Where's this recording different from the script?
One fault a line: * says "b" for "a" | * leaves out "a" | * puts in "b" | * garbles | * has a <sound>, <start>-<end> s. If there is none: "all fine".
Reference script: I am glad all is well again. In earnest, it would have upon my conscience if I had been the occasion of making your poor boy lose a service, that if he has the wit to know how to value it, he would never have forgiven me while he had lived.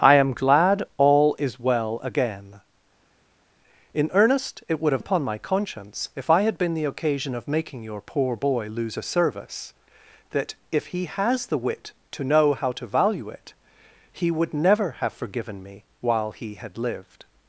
all fine